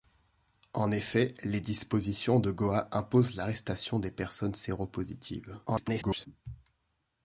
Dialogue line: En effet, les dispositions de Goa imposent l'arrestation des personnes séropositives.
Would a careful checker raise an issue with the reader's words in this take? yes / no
yes